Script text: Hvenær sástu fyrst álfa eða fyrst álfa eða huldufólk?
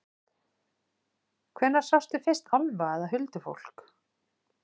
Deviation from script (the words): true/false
true